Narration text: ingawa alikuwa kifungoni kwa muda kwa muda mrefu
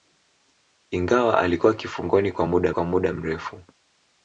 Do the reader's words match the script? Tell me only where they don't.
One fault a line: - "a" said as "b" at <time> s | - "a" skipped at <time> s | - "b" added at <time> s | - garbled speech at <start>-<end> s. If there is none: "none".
none